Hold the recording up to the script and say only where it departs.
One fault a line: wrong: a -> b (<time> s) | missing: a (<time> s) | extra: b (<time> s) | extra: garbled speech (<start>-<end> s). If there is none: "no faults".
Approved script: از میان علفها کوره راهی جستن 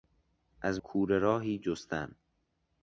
missing: میان علفها (0.8 s)